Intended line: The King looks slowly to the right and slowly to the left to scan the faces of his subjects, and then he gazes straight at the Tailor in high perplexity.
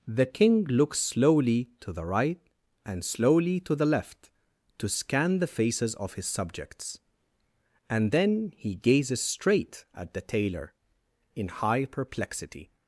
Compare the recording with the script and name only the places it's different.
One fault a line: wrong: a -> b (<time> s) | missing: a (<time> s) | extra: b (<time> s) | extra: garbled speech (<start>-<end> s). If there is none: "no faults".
no faults